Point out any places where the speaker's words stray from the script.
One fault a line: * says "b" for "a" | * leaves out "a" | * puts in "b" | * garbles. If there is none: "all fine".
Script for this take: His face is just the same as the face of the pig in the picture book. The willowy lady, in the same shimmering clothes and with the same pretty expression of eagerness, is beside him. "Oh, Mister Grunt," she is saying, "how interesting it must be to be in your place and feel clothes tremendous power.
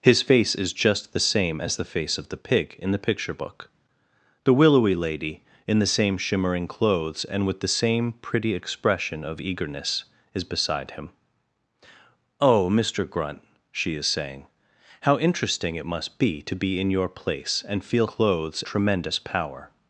all fine